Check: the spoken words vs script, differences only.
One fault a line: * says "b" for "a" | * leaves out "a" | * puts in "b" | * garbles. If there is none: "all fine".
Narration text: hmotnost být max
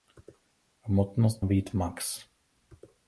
all fine